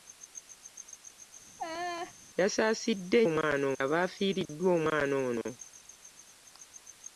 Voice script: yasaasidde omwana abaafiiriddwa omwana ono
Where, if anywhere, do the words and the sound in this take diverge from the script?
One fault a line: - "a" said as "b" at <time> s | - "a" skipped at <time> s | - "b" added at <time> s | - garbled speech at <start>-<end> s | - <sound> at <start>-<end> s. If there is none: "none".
- laugh at 1.6-2.1 s